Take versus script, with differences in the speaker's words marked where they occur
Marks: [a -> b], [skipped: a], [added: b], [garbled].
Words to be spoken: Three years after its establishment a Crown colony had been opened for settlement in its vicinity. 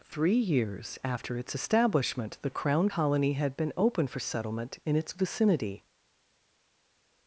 Three years after its establishment [a -> the] Crown colony had been [opened -> open] for settlement in its vicinity.